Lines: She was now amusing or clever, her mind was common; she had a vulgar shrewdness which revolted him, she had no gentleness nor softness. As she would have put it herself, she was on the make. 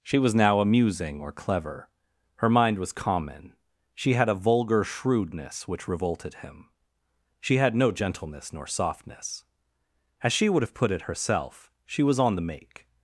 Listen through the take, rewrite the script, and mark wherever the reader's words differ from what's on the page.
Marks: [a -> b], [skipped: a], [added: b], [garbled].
She was now amusing or clever, her mind was common; she had a vulgar shrewdness which revolted him, she had no gentleness nor softness. As she would have put it herself, she was on the make.